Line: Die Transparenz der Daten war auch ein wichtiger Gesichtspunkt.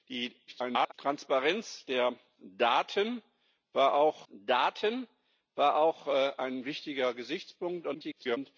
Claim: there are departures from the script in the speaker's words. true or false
true